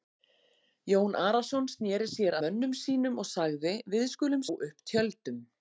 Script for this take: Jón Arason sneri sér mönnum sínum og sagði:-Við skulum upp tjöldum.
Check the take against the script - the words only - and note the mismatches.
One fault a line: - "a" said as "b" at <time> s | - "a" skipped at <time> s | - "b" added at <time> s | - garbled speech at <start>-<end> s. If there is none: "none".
none